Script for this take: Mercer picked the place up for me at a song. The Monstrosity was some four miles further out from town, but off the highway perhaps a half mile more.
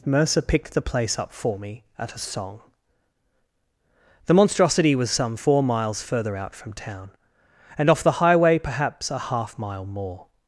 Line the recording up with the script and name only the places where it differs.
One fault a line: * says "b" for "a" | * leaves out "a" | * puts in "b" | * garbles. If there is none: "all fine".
* says "and" for "but"